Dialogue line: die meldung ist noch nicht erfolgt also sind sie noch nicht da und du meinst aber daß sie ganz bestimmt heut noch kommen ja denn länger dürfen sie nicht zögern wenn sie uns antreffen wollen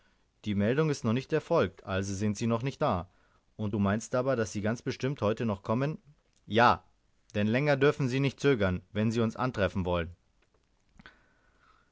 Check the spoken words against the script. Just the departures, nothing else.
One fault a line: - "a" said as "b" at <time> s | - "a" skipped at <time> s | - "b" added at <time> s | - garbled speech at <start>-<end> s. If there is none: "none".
none